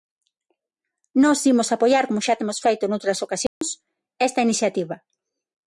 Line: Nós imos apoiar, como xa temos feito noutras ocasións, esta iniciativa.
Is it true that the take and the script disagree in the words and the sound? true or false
true